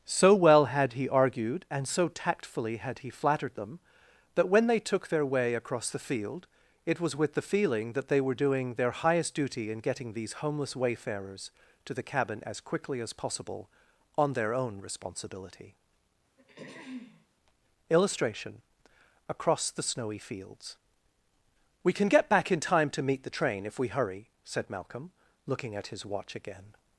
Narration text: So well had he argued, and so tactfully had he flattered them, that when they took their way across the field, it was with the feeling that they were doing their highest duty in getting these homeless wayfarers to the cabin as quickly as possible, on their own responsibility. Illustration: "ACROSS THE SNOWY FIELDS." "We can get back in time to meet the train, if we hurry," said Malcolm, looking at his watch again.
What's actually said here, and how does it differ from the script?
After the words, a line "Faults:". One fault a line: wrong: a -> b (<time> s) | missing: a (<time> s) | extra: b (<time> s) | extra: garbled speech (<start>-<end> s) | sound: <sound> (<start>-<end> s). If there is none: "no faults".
So well had he argued, and so tactfully had he flattered them, that when they took their way across the field, it was with the feeling that they were doing their highest duty in getting these homeless wayfarers to the cabin as quickly as possible, on their own responsibility. Illustration: "ACROSS THE SNOWY FIELDS." "We can get back in time to meet the train, if we hurry," said Malcolm, looking at his watch again.
Faults:
sound: throat clearing (16.4-17.3 s)